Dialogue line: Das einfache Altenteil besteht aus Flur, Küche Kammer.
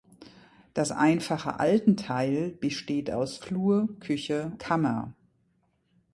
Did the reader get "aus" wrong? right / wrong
right